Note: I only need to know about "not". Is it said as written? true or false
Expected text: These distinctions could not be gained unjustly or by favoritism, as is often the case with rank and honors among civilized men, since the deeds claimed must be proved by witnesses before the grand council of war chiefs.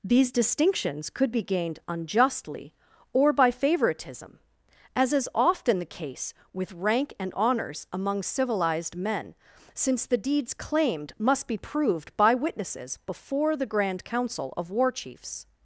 false